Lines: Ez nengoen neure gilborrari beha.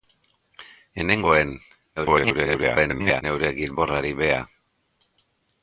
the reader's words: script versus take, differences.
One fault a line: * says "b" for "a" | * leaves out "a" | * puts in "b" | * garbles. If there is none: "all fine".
* garbles